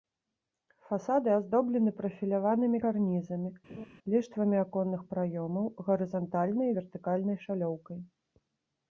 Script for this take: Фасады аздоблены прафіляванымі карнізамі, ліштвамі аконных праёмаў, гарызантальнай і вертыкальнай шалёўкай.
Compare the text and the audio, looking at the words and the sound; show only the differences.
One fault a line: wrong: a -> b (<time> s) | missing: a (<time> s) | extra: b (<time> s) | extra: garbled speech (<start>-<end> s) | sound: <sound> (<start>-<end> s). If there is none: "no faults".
sound: laugh (3.7-3.9 s)